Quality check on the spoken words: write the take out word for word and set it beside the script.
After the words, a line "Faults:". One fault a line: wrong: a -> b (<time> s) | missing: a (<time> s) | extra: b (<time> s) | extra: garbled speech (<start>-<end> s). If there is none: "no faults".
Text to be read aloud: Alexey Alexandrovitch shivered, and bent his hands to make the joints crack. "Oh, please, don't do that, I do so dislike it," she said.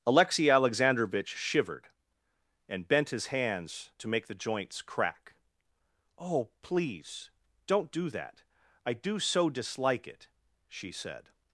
Alexey Alexandrovitch shivered, and bent his hands to make the joints crack. "Oh, please, don't do that, I do so dislike it," she said.
Faults:
no faults